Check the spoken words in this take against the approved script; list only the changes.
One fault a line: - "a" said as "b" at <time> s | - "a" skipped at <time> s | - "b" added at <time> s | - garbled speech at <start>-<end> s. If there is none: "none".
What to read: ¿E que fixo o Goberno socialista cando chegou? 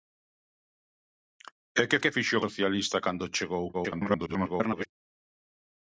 - "que" added at 2.0 s
- "Goberno" skipped at 2.4 s
- garbled speech at 3.7-4.9 s